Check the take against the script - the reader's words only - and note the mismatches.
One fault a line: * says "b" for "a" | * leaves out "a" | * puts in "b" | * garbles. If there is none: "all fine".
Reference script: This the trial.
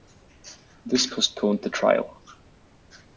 * puts in "postponed"